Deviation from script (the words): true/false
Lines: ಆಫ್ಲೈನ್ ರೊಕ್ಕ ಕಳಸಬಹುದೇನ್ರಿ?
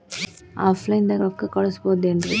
true